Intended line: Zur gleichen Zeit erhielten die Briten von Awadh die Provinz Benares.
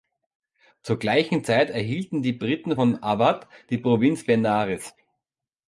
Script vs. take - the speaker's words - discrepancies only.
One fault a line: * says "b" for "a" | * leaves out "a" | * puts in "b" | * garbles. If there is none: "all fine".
all fine